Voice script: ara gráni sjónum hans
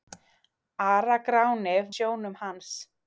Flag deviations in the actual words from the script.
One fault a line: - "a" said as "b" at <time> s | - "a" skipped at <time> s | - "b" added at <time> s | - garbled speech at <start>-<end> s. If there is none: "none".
none